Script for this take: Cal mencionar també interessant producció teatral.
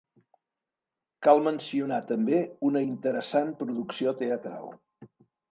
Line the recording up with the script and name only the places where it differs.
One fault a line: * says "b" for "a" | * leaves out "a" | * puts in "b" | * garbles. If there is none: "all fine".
* puts in "una"